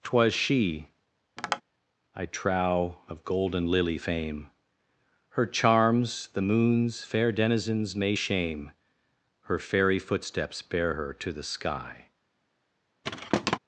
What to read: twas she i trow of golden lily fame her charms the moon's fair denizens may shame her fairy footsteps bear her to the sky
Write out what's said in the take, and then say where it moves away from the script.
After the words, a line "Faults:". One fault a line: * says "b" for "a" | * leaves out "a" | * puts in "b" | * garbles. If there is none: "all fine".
twas she i trow of golden lily fame her charms the moon's fair denizens may shame her fairy footsteps bear her to the sky
Faults:
all fine